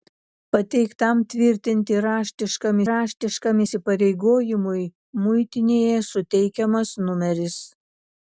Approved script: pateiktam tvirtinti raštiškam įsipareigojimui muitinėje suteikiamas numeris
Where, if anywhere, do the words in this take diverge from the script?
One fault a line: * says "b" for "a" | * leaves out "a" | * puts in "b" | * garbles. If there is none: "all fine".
* puts in "raštiškam"